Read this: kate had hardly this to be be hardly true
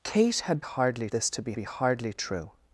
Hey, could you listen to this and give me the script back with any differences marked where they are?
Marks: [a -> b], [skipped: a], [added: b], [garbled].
kate had hardly this to be be hardly true